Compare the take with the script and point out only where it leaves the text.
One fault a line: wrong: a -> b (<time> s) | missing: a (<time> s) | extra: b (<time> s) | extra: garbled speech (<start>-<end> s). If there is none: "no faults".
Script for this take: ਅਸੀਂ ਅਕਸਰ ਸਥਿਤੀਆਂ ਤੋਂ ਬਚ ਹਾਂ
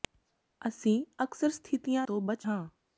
no faults